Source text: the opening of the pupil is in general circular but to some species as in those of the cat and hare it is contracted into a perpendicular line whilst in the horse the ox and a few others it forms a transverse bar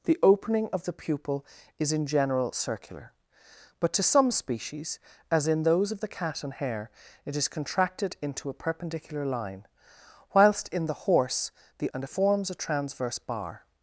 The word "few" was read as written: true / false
false